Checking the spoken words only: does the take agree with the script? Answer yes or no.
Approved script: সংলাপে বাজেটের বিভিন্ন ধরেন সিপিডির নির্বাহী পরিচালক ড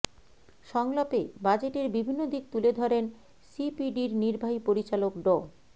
no